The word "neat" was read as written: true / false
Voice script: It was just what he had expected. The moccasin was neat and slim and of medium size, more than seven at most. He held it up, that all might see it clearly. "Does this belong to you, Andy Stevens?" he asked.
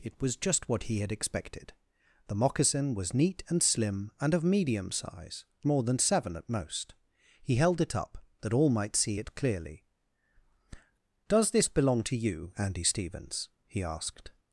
true